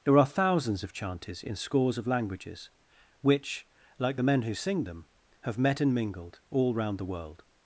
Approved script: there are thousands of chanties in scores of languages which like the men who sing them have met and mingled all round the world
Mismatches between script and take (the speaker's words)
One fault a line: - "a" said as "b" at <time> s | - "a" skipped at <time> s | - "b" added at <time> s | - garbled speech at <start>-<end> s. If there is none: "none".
none